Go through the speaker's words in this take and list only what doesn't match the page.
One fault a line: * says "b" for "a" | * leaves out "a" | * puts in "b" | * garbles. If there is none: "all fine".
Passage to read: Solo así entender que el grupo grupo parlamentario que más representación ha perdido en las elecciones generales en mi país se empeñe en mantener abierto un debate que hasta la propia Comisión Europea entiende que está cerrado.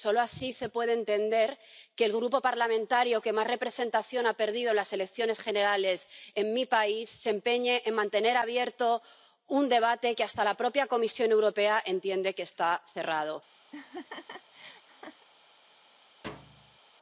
* puts in "se puede"
* leaves out "grupo"